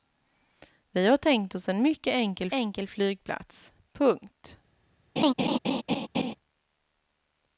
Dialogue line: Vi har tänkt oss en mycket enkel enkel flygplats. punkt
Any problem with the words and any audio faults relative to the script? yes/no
yes